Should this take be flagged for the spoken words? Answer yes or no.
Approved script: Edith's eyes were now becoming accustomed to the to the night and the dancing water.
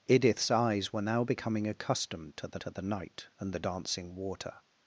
no